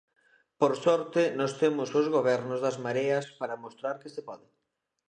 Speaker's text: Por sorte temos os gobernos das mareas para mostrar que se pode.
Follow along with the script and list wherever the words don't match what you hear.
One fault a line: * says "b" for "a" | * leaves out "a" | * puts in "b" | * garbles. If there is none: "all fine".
* puts in "nós"